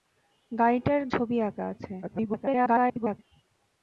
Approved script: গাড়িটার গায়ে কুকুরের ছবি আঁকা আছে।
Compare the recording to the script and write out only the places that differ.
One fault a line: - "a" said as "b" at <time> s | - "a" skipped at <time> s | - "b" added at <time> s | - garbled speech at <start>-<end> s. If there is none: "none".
- "গায়ে কুকুরের" skipped at 1.0 s
- garbled speech at 2.0-3.2 s